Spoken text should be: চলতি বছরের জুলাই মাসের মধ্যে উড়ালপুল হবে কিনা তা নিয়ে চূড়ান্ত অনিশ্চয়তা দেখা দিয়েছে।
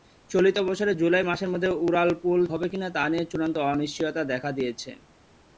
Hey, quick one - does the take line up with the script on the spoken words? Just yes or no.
yes